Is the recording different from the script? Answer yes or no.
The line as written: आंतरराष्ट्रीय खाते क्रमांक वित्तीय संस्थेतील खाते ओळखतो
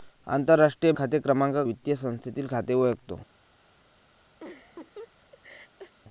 no